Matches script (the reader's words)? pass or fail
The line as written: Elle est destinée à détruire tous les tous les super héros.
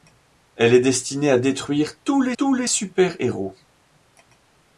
pass